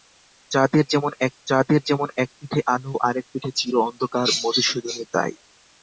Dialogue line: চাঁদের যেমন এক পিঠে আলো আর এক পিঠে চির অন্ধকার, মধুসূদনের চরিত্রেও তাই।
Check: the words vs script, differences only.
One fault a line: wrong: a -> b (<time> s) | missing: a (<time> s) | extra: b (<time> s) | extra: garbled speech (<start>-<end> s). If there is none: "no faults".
extra: চাঁদের যেমন এক (1.5 s)
missing: চরিত্রেও (5.1 s)